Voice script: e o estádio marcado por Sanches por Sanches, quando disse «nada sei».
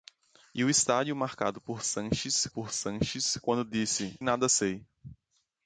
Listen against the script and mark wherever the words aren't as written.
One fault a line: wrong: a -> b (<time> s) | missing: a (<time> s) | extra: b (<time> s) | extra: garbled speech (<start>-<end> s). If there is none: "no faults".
no faults